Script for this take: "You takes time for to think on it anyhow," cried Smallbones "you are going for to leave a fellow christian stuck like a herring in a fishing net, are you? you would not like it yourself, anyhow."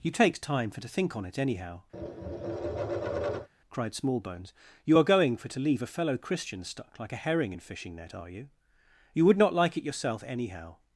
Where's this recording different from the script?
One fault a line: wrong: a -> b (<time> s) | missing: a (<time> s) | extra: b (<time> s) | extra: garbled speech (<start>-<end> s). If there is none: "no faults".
missing: a (7.6 s)